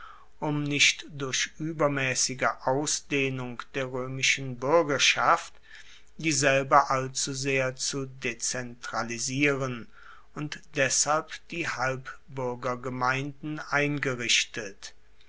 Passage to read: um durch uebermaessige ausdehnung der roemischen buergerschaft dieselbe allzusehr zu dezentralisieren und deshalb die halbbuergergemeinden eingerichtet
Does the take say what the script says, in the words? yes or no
no